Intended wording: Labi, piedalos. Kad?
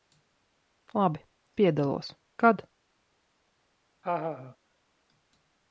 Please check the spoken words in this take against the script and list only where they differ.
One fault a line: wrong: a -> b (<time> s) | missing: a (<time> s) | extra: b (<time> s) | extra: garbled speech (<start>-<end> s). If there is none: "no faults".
no faults